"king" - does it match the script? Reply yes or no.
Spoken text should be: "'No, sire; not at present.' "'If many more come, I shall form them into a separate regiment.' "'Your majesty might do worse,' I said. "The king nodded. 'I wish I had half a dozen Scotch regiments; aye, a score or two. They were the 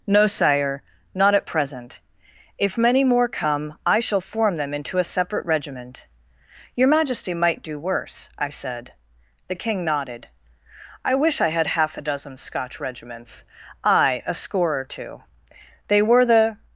yes